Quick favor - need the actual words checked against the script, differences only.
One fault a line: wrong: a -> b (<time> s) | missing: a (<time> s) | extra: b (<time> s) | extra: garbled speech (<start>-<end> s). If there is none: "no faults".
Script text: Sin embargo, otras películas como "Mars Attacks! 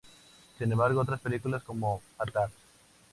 missing: Mars (2.0 s)